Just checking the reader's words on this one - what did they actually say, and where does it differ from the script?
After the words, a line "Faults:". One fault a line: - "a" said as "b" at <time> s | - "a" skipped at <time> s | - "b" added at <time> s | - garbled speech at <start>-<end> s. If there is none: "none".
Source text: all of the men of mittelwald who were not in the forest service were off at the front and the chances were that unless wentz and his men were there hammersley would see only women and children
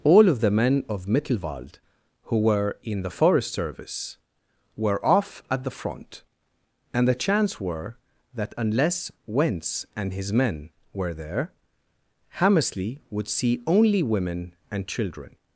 all of the men of mittelwald who were in the forest service were off at the front and the chance were that unless wentz and his men were there hammersley would see only women and children
Faults:
- "not" skipped at 2.8 s
- "chances" said as "chance" at 7.2 s